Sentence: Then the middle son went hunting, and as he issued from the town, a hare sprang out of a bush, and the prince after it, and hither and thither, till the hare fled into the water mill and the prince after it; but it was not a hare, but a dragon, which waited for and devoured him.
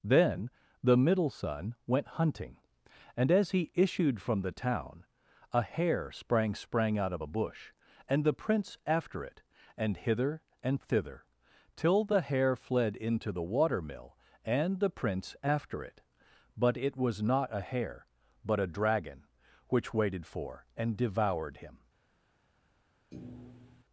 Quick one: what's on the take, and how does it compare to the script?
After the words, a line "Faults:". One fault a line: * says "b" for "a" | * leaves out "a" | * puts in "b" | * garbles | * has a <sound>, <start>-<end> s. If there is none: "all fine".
Then the middle son went hunting, and as he issued from the town, a hare sprang sprang out of a bush, and the prince after it, and hither and thither, till the hare fled into the water mill and the prince after it; but it was not a hare, but a dragon, which waited for and devoured him.
Faults:
* puts in "sprang"
* has a thud, 23.1-23.8 s